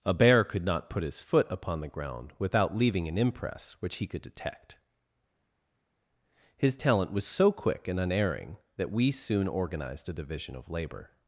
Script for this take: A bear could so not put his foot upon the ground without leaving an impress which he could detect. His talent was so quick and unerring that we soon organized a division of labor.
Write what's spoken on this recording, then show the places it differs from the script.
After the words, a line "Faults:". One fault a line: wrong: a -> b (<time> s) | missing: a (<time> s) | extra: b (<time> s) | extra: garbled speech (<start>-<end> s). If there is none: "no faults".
A bear could not put his foot upon the ground without leaving an impress which he could detect. His talent was so quick and unerring that we soon organized a division of labor.
Faults:
missing: so (0.7 s)